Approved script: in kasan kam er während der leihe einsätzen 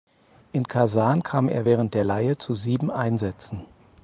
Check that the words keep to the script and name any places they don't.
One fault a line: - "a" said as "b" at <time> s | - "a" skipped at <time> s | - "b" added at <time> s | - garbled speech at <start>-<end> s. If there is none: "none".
- "zu sieben" added at 2.4 s